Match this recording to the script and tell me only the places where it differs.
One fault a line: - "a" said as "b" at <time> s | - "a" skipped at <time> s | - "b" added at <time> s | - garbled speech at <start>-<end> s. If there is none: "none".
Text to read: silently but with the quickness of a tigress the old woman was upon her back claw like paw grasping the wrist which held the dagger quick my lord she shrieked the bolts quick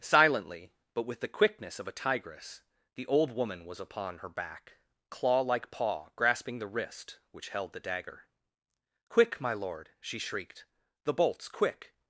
none